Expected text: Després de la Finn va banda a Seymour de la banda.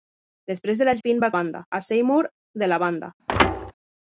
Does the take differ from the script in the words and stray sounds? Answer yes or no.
yes